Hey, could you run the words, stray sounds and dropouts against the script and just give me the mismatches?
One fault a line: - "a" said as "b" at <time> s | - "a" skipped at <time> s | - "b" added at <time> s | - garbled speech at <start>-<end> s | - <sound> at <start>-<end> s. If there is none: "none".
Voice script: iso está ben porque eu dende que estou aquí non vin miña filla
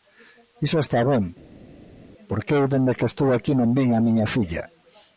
- "a" added at 3.9 s